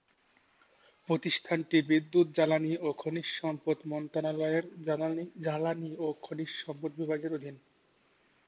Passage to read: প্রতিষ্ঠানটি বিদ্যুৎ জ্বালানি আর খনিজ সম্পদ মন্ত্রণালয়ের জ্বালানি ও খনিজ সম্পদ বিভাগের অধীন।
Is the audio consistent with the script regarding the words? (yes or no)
no